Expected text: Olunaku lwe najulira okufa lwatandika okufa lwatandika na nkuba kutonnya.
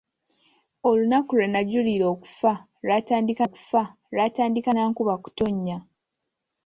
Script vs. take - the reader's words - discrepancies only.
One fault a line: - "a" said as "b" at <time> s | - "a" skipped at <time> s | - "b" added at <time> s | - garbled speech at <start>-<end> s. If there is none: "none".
none